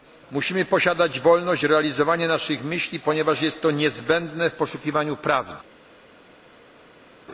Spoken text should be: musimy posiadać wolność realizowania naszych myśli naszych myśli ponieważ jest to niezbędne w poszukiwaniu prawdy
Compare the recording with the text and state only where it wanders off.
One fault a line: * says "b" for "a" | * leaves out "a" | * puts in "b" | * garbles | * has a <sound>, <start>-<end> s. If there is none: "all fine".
* leaves out "naszych myśli"